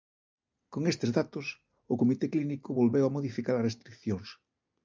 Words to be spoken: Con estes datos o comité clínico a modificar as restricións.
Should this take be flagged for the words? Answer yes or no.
yes